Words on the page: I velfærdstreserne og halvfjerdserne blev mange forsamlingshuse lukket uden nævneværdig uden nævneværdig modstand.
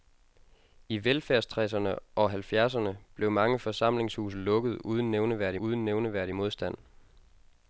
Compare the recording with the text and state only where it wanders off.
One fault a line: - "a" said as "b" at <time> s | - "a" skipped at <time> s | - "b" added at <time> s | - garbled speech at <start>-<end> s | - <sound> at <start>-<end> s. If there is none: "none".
none